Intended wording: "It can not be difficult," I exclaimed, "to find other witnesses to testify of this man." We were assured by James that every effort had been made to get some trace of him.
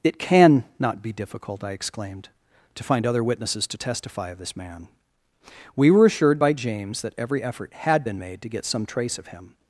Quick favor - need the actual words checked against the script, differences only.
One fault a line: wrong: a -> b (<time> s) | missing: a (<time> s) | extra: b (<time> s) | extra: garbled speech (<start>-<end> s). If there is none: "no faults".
no faults